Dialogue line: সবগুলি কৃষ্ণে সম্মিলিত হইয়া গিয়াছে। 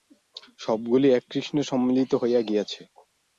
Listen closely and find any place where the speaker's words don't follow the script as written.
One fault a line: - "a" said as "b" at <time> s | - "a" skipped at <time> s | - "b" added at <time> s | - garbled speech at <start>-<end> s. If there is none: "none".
- "এক" added at 1.1 s